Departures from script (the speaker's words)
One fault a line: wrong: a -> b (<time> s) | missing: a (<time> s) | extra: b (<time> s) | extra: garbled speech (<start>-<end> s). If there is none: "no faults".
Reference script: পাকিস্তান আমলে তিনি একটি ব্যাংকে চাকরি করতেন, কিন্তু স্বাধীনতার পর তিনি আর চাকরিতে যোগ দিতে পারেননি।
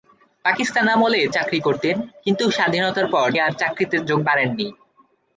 missing: তিনি একটি ব্যাংকে (1.2 s)
missing: তিনি (3.3 s)
missing: দিতে (4.2 s)